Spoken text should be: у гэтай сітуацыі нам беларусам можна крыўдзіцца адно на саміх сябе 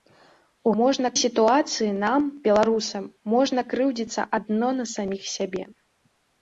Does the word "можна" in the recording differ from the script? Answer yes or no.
no